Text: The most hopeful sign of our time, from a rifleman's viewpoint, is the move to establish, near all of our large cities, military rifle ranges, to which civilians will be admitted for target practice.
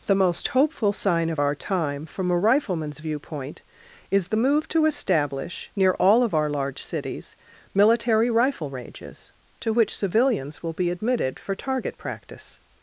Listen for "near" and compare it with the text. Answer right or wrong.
right